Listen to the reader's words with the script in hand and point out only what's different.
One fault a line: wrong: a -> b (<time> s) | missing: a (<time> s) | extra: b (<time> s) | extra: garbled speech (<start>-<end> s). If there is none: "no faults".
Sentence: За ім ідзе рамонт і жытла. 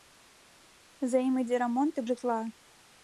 no faults